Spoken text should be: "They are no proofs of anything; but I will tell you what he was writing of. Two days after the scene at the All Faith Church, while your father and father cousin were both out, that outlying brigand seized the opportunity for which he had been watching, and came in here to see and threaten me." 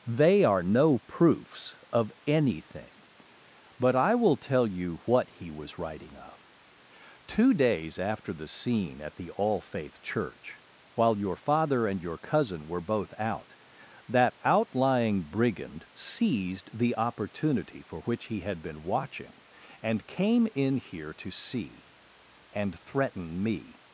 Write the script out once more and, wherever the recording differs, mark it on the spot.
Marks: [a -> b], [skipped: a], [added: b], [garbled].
"They are no proofs of anything; but I will tell you what he was writing of. Two days after the scene at the All Faith Church, while your father and [father -> your] cousin were both out, that outlying brigand seized the opportunity for which he had been watching, and came in here to see and threaten me."